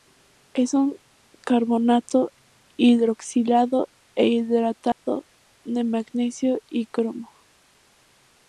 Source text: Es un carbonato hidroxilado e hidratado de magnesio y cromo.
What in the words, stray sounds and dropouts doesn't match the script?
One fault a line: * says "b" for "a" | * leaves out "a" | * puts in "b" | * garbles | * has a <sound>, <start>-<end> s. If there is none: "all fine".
* has a dropout, 4.9-5.1 s